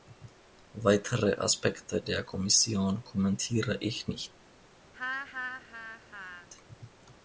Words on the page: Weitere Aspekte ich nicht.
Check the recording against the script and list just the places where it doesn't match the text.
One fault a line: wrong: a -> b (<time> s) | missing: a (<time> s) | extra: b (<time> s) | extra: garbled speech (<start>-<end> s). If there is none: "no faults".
extra: der Kommission kommentiere (2.0 s)